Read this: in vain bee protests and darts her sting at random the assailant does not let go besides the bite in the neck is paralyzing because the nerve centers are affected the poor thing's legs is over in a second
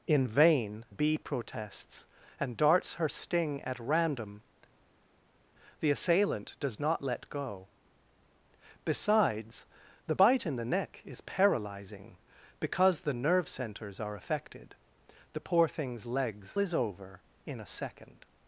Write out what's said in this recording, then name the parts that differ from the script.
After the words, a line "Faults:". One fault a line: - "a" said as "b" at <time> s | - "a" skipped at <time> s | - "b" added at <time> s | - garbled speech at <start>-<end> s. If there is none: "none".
in vain bee protests and darts her sting at random the assailant does not let go besides the bite in the neck is paralyzing because the nerve centers are affected the poor thing's legs is over in a second
Faults:
none